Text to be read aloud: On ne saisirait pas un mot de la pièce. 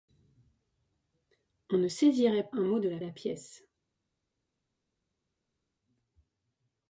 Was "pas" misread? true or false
true